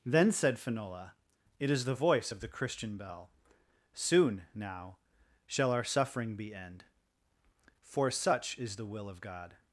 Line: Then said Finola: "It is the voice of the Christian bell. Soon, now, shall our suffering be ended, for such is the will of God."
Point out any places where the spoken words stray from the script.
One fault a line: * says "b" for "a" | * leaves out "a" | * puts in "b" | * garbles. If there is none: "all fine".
* says "end" for "ended"